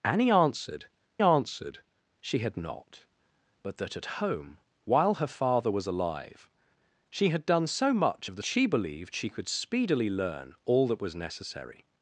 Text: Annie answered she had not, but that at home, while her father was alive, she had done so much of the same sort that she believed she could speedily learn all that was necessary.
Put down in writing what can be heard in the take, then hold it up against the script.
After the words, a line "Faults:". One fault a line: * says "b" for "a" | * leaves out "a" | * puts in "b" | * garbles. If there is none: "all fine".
Annie answered answered she had not, but that at home, while her father was alive, she had done so much of the she believed she could speedily learn all that was necessary.
Faults:
* puts in "answered"
* leaves out "same sort that"